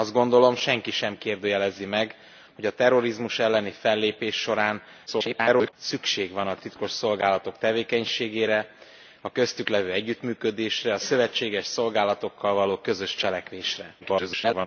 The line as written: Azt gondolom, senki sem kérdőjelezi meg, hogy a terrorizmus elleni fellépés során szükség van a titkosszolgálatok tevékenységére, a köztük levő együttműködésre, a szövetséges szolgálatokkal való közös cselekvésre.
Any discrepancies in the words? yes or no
yes